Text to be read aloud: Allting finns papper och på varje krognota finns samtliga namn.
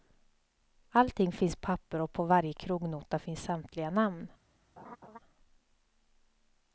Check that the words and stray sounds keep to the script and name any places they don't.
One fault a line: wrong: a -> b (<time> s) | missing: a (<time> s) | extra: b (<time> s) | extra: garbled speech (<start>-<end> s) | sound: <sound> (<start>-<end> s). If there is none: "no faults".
sound: laugh (4.8-5.2 s)